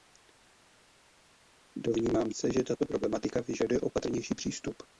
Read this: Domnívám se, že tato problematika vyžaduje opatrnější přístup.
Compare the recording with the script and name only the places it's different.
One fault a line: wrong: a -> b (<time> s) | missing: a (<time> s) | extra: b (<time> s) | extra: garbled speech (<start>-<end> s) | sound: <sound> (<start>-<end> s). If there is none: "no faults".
no faults